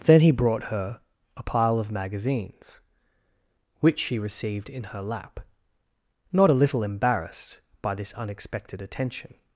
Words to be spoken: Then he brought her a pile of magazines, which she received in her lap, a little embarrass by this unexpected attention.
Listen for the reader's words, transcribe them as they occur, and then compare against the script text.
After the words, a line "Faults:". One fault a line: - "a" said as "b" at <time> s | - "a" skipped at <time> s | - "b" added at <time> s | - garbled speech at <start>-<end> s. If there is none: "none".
Then he brought her a pile of magazines, which she received in her lap, not a little embarrassed by this unexpected attention.
Faults:
- "not" added at 6.3 s
- "embarrass" said as "embarrassed" at 6.8 s